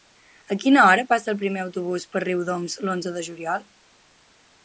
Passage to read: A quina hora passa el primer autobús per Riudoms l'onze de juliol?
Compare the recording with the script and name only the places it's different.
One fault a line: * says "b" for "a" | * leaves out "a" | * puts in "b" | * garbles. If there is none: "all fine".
all fine